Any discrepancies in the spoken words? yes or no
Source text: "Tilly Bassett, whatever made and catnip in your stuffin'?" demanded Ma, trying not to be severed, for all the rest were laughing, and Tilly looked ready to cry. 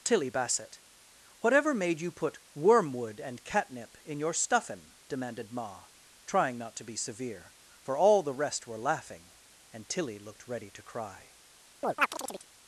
yes